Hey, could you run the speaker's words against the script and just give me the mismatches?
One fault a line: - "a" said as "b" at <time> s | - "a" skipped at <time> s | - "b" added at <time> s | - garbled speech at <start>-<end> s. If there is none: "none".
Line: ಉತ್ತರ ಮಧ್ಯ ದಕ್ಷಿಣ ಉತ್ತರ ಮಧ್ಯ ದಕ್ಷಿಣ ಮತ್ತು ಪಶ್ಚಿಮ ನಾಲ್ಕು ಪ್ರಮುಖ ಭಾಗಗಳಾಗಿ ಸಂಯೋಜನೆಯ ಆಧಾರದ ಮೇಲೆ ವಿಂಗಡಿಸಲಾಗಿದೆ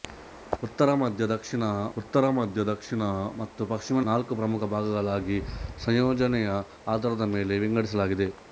none